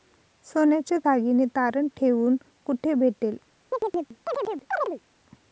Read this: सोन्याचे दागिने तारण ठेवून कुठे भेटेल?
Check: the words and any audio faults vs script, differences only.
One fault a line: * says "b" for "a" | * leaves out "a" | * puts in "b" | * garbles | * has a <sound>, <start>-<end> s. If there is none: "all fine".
* has a chirp, 3.7-5.0 s